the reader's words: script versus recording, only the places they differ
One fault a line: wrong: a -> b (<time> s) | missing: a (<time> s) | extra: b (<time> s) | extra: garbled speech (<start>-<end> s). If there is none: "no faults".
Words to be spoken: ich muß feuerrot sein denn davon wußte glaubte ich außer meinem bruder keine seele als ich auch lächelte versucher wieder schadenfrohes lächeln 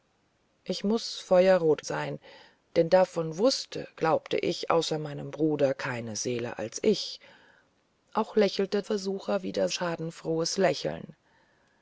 no faults